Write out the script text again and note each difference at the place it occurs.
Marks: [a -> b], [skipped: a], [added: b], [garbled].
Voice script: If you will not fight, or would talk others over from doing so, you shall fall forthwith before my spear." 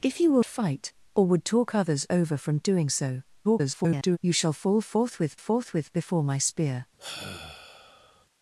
If you will [skipped: not] fight, or would talk others over from doing so, [garbled] you shall fall forthwith [added: forthwith] before my spear."